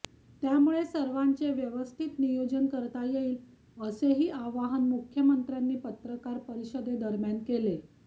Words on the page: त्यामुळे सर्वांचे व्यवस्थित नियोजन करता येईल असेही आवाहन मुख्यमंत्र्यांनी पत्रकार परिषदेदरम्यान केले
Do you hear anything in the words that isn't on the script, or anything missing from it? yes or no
no